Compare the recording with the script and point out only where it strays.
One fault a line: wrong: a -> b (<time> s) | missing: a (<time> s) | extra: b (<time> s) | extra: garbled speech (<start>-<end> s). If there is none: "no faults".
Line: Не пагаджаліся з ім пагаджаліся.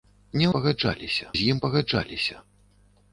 no faults